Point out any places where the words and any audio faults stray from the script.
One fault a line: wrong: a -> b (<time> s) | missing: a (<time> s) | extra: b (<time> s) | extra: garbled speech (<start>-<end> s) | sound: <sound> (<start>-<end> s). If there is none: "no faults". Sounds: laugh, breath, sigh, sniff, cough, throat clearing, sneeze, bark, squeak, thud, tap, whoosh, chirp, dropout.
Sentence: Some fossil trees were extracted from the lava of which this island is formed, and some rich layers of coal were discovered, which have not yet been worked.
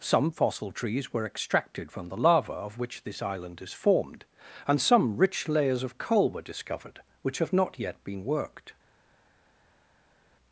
no faults